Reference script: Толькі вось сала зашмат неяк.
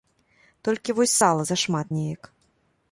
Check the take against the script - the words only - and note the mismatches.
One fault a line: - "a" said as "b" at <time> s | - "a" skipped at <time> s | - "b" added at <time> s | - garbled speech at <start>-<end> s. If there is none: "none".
none